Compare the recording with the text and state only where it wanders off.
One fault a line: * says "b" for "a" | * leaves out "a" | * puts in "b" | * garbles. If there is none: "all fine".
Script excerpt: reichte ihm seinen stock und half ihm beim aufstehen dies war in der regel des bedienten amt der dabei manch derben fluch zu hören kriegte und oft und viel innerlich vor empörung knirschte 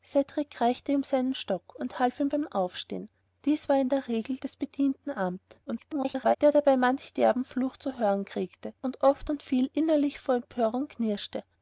* garbles